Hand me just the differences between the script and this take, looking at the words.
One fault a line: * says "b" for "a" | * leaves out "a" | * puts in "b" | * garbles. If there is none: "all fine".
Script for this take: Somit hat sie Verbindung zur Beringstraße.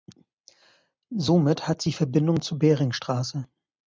all fine